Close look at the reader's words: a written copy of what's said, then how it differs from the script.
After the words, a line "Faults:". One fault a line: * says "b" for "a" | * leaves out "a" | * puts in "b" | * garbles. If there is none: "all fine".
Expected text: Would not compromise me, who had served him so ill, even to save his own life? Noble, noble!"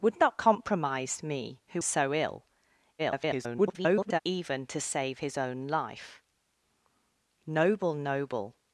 Would not compromise me, who so ill, [garbled] even to save his own life? Noble, noble!"
Faults:
* leaves out "had served him"
* garbles